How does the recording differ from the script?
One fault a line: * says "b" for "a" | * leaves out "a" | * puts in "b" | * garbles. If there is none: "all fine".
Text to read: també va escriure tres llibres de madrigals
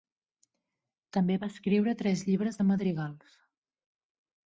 all fine